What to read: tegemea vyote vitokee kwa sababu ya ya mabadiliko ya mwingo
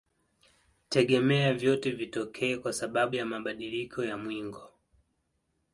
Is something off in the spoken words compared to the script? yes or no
yes